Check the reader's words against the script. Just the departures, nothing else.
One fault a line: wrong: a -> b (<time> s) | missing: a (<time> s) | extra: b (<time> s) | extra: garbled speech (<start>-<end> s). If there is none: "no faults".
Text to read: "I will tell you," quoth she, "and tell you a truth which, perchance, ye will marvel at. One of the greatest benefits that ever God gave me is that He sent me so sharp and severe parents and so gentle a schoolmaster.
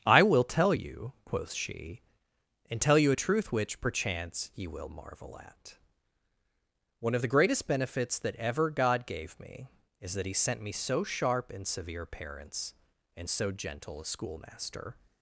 no faults